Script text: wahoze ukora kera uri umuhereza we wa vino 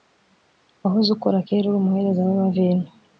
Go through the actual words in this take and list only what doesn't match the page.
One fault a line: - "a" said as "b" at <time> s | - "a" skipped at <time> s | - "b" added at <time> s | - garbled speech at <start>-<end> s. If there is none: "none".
none